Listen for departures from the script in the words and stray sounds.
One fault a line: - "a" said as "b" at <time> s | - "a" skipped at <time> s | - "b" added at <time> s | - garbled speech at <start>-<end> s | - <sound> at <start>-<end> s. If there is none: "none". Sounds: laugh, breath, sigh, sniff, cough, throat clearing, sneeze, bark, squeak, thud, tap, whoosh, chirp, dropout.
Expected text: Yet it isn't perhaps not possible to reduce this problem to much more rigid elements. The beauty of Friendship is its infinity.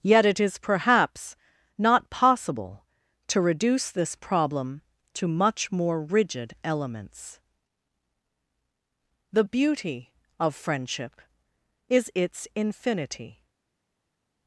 - "isn't" said as "is" at 0.4 s